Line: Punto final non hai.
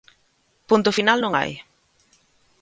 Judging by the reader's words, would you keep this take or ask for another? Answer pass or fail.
pass